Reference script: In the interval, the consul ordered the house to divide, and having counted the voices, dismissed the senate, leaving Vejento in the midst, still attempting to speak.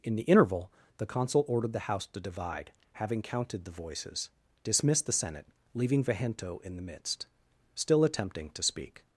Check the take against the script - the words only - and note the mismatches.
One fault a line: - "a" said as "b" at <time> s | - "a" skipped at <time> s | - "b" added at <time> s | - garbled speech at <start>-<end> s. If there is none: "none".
- "and" skipped at 2.7 s